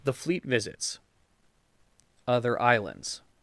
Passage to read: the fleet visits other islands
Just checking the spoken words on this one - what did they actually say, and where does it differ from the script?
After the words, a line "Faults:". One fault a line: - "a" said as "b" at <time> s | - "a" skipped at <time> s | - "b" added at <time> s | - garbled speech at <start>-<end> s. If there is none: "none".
the fleet visits other islands
Faults:
none